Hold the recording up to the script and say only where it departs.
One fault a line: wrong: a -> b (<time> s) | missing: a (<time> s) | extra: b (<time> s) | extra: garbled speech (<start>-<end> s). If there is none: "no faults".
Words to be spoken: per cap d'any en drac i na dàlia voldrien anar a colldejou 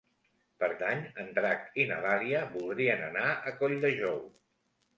missing: cap (0.7 s)